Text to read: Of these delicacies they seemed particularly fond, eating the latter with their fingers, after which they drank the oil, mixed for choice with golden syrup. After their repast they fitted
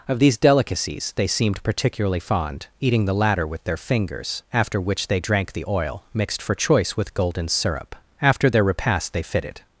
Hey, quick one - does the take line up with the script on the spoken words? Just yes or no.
yes